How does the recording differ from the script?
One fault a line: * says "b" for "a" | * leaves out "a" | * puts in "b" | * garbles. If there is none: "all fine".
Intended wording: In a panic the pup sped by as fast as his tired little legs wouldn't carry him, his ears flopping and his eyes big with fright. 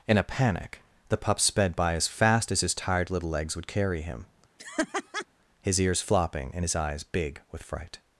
* says "would" for "wouldn't"